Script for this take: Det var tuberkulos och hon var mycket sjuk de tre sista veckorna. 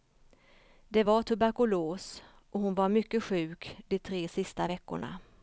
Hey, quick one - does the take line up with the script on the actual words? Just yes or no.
yes